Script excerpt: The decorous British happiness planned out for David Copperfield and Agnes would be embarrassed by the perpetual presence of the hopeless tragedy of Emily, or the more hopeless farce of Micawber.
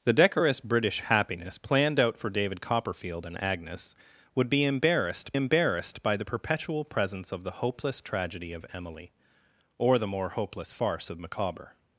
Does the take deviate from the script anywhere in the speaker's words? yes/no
yes